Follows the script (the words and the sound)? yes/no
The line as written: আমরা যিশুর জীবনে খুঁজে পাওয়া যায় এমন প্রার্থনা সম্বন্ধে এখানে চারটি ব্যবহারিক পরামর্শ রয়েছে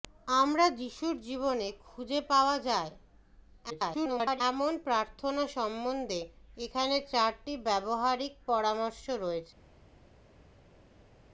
no